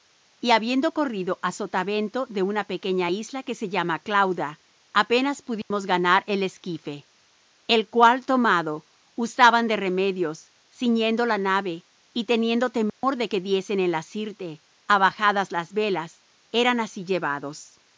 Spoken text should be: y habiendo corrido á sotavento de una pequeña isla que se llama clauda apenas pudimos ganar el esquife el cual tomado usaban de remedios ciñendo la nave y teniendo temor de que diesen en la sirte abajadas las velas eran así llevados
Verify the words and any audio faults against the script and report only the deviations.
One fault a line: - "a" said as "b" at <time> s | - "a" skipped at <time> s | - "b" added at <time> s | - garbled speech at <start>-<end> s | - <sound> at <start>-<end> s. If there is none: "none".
- dropout at 5.6-5.7 s
- dropout at 12.9-13.0 s